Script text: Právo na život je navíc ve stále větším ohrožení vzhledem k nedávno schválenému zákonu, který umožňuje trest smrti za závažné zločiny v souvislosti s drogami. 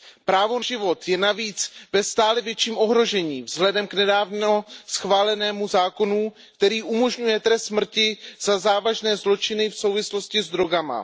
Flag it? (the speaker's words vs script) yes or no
yes